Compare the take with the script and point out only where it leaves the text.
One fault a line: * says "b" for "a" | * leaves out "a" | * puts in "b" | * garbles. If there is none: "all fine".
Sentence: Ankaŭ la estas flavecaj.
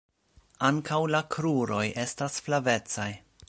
* puts in "kruroj"